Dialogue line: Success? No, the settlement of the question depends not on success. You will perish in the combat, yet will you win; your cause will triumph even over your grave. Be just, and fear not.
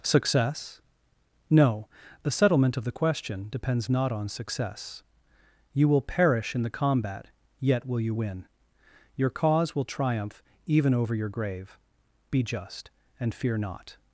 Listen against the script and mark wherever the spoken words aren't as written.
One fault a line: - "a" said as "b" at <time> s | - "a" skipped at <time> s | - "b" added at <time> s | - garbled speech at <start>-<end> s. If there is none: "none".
none